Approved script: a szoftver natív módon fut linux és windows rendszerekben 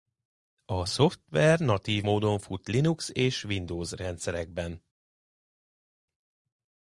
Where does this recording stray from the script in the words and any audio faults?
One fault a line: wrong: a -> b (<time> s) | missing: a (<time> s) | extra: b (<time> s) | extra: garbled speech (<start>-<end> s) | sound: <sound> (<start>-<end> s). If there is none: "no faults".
no faults